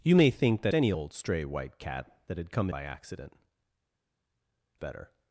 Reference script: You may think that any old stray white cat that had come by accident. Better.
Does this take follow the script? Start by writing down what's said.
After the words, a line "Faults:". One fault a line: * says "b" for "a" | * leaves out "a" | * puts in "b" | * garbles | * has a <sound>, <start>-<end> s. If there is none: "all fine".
You may think that any old stray white cat that had come by accident. Better.
Faults:
all fine